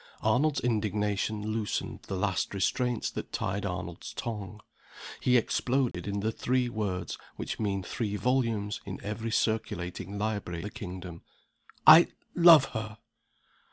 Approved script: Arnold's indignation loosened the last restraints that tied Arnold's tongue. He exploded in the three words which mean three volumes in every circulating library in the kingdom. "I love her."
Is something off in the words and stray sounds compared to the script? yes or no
yes